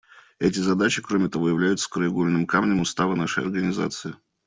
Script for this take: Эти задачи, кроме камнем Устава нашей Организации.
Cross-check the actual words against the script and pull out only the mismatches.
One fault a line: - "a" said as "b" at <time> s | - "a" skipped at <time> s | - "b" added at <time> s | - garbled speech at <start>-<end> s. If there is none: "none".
- "того являются краеугольным" added at 1.3 s